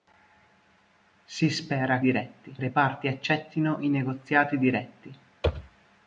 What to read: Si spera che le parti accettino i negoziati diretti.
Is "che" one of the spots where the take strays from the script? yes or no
yes